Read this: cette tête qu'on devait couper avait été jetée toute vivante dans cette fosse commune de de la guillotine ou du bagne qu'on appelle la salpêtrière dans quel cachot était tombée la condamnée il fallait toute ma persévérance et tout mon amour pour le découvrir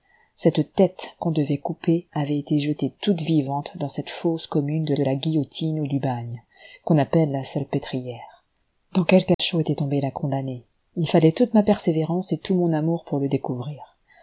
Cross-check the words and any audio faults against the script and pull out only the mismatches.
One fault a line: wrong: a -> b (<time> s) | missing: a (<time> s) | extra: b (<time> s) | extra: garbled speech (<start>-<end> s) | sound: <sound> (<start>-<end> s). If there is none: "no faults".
sound: dropout (9.3-9.4 s)